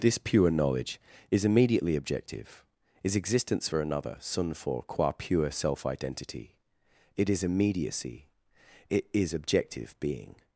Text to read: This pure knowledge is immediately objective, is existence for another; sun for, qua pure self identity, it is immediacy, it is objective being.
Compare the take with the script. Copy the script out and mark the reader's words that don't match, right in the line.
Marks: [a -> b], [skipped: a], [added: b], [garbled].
This pure knowledge is immediately objective, is existence for another; sun for, qua pure self identity, it is immediacy, it is objective being.